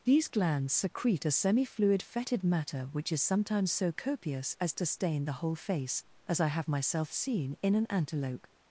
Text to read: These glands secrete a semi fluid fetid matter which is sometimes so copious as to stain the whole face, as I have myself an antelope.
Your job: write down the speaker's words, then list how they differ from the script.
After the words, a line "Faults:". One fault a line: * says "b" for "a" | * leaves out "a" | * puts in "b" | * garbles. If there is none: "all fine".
These glands secrete a semi fluid fetid matter which is sometimes so copious as to stain the whole face, as I have myself seen in an antelope.
Faults:
* puts in "seen in"